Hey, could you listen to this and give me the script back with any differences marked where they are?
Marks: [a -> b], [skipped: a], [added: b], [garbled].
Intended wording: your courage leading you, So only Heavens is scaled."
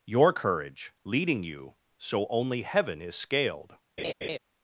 your courage leading you, So only [Heavens -> Heaven] is scaled."